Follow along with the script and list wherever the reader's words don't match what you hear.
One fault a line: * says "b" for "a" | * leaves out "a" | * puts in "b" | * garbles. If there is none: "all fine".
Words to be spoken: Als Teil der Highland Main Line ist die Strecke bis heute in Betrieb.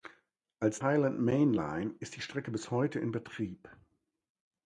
* leaves out "Teil der"